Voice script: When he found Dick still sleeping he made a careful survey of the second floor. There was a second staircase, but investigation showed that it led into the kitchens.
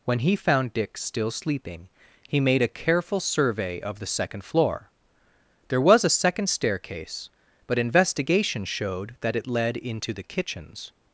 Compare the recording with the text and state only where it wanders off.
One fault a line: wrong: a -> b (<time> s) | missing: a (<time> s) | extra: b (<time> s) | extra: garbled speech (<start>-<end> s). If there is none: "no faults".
no faults